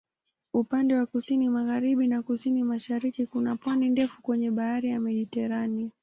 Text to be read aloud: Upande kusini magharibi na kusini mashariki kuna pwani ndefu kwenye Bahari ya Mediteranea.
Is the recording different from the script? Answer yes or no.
yes